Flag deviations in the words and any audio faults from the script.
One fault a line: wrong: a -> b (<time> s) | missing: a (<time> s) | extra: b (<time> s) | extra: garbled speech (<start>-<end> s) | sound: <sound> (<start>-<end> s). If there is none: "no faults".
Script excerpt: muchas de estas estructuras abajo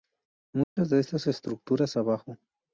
sound: dropout (0.6-0.8 s)